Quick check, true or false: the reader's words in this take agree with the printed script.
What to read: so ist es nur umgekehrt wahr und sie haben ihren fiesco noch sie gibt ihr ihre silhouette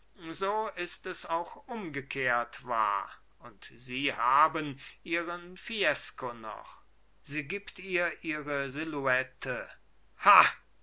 false